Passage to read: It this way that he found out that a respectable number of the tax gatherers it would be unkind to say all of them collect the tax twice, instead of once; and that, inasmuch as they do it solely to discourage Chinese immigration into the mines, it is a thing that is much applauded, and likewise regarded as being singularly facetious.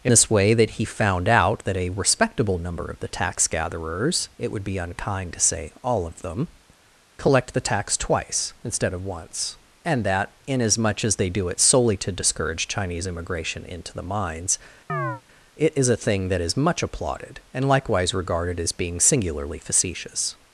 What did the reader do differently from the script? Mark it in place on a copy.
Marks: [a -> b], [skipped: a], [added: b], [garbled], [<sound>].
It this way that he found out that a respectable number of the tax gatherers it would be unkind to say all of them collect the tax twice, instead of once; and that, inasmuch as they do it solely to discourage Chinese immigration into the mines, [chirp] it is a thing that is much applauded, and likewise regarded as being singularly facetious.